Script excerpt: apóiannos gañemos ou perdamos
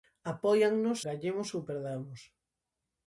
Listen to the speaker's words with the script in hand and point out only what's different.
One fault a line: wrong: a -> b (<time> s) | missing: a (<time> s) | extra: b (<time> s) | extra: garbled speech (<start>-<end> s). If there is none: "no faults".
no faults